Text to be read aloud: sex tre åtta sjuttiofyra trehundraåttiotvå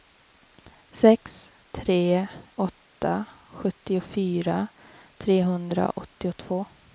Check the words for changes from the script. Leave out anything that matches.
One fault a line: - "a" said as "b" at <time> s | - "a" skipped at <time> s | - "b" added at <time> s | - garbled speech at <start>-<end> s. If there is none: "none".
none